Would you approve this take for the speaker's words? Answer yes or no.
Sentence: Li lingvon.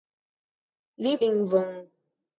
yes